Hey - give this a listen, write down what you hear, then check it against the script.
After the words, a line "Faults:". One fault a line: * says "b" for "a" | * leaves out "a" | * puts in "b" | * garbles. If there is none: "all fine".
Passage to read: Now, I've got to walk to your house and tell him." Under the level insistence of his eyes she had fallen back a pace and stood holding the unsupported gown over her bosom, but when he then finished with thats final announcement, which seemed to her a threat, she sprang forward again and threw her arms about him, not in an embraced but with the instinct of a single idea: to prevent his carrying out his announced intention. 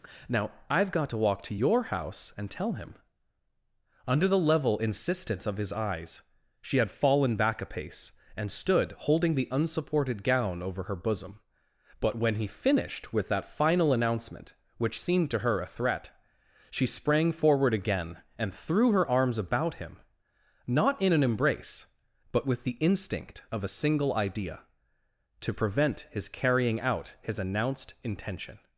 Now, I've got to walk to your house and tell him." Under the level insistence of his eyes she had fallen back a pace and stood holding the unsupported gown over her bosom, but when he finished with that final announcement, which seemed to her a threat, she sprang forward again and threw her arms about him, not in an embrace but with the instinct of a single idea: to prevent his carrying out his announced intention.
Faults:
* leaves out "then"
* says "that" for "thats"
* says "embrace" for "embraced"